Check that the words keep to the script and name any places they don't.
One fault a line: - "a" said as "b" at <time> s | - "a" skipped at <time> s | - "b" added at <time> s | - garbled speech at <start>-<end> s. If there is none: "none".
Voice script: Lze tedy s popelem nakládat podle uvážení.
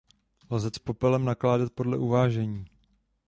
- "tedy" skipped at 0.7 s